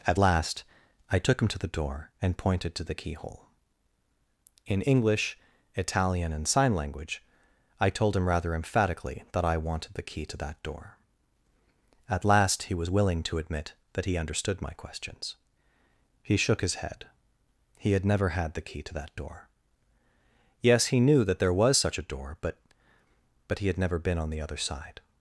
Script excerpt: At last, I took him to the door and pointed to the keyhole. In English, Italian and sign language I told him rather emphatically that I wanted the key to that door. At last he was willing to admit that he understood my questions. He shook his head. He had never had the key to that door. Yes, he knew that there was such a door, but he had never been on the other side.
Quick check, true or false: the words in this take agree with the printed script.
false